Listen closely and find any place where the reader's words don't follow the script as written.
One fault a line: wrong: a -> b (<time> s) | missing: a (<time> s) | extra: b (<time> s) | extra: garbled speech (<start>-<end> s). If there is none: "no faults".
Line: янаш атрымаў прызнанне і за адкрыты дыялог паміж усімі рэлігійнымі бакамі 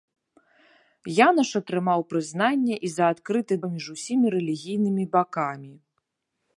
missing: дыялог (3.5 s)